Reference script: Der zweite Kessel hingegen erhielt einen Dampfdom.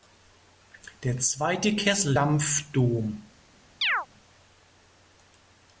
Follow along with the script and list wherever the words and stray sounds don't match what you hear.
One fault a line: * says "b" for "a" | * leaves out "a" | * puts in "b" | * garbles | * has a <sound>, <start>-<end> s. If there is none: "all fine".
* leaves out "hingegen erhielt einen"
* has a chirp, 3.8-4.1 s